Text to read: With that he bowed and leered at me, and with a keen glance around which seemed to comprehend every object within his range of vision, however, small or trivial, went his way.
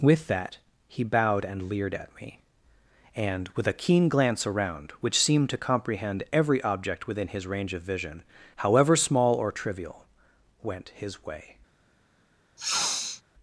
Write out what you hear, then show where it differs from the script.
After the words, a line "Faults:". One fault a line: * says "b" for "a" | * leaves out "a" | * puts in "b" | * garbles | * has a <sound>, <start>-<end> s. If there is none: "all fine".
With that he bowed and leered at me, and with a keen glance around which seemed to comprehend every object within his range of vision, however, small or trivial, went his way.
Faults:
* has a sniff, 12.6-13.2 s